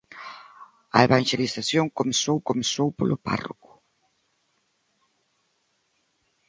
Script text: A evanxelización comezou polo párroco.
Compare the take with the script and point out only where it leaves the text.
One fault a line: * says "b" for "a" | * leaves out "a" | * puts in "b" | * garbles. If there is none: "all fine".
* puts in "comezou"